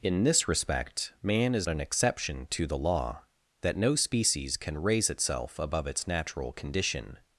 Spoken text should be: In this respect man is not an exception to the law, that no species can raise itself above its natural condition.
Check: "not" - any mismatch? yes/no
yes